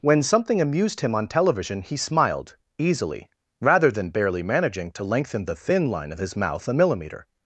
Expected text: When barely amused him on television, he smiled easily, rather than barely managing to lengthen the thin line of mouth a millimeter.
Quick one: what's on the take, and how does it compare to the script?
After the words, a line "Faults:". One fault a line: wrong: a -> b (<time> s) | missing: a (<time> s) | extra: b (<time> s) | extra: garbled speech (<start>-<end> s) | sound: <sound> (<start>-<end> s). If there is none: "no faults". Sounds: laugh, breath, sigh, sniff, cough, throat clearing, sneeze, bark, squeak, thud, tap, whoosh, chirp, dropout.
When something amused him on television, he smiled easily, rather than barely managing to lengthen the thin line of his mouth a millimeter.
Faults:
wrong: barely -> something (0.2 s)
extra: his (6.2 s)